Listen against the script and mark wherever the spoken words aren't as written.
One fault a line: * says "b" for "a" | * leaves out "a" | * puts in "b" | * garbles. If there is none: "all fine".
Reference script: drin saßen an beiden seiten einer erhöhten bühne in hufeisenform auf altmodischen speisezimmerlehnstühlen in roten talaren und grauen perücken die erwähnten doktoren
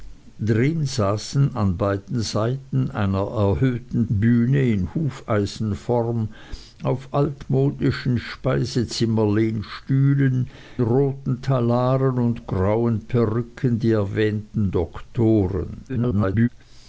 * leaves out "in"
* garbles